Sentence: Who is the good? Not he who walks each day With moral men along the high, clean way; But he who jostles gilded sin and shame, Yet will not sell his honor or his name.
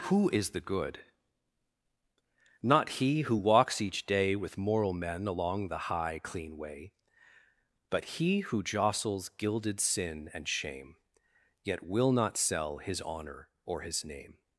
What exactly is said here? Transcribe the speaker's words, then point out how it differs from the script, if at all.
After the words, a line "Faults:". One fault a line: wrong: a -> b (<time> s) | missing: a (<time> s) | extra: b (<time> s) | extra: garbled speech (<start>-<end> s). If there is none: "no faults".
Who is the good? Not he who walks each day With moral men along the high, clean way; But he who jostles gilded sin and shame, Yet will not sell his honor or his name.
Faults:
no faults